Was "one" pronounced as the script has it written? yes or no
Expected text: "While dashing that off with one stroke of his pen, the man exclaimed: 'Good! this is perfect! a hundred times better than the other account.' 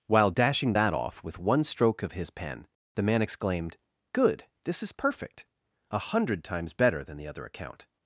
yes